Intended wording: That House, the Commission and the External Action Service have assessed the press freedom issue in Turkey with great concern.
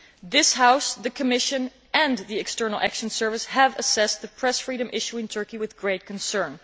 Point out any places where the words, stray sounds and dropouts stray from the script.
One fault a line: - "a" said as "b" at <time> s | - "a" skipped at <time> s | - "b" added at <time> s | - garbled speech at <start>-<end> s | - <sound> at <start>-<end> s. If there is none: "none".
- "That" said as "This" at 0.2 s